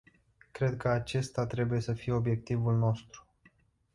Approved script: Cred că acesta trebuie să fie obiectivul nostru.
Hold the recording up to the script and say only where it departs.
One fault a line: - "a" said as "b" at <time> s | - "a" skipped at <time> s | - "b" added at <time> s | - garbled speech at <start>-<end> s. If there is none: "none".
none